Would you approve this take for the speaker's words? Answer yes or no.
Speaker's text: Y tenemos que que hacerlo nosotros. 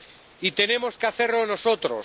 no